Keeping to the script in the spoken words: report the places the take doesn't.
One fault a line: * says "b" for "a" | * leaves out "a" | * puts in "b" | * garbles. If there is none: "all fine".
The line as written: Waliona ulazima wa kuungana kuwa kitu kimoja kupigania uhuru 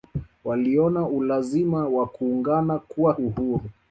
* leaves out "kitu kimoja kupigania"